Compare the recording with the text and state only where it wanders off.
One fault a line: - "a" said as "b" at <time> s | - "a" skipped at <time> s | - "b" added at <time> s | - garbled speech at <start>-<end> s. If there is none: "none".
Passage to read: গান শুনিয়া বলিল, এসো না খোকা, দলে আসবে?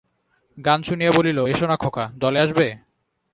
none